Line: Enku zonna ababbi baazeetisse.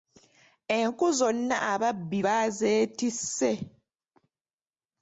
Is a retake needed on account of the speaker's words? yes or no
no